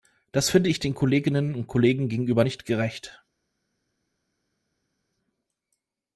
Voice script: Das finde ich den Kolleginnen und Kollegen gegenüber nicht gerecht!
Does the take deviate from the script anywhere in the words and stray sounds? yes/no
no